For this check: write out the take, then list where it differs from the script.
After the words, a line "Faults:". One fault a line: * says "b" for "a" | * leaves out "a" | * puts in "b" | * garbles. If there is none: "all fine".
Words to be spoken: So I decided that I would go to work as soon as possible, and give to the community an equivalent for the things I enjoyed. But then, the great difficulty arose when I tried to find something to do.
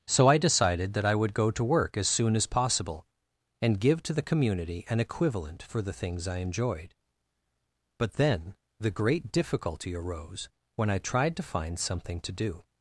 So I decided that I would go to work as soon as possible, and give to the community an equivalent for the things I enjoyed. But then, the great difficulty arose when I tried to find something to do.
Faults:
all fine